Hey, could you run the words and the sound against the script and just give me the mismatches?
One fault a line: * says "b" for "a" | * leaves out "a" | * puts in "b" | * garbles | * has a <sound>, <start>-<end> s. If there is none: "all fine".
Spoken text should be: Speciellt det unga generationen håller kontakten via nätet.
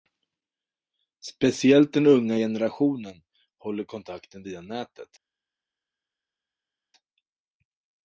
* says "den" for "det"